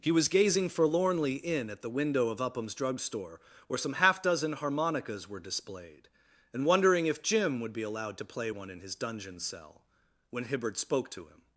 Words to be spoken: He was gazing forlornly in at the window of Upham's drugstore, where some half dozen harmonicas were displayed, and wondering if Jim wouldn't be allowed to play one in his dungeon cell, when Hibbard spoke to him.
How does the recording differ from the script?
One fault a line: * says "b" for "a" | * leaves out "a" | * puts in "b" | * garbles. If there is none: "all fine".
* says "would" for "wouldn't"